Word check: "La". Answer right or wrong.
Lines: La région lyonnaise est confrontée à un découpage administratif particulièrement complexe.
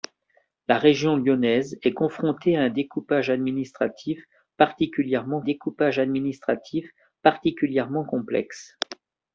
right